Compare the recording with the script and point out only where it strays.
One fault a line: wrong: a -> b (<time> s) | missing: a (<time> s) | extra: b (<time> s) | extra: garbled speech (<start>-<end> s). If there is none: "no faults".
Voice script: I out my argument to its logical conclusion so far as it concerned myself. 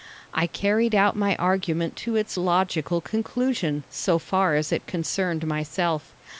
extra: carried (0.5 s)